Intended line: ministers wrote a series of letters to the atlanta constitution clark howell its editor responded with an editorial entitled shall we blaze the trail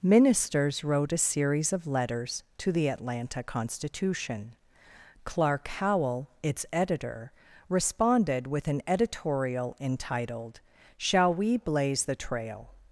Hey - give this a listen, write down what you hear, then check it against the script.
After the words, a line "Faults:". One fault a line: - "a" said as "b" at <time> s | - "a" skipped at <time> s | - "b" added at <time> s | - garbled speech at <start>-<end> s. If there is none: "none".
ministers wrote a series of letters to the atlanta constitution clark howell its editor responded with an editorial entitled shall we blaze the trail
Faults:
none